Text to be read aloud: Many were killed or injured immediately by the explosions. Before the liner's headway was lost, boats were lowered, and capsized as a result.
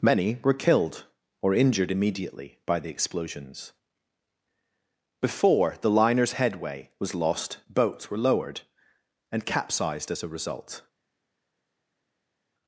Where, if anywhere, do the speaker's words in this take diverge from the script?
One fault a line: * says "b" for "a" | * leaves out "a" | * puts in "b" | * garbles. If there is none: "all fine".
all fine